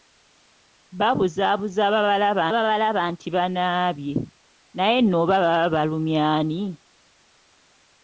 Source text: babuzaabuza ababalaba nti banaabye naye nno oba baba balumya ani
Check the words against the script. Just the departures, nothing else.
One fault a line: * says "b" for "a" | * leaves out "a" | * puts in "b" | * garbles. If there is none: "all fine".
* puts in "ababalaba"